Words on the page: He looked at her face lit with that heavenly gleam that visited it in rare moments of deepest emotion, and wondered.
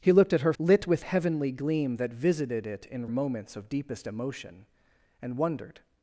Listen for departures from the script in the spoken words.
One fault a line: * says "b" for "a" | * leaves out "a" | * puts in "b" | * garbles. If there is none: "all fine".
* leaves out "face"
* leaves out "that"
* leaves out "rare"